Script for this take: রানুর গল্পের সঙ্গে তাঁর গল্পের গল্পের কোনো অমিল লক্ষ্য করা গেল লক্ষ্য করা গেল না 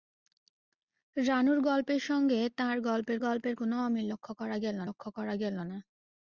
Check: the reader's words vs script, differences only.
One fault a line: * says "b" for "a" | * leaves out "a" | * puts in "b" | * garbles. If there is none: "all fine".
all fine